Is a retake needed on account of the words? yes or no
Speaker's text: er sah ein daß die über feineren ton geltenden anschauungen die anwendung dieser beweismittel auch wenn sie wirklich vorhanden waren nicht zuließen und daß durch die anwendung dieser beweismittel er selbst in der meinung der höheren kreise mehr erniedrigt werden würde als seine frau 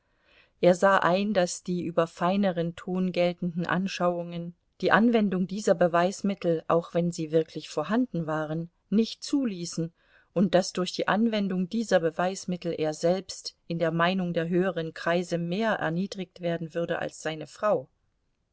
no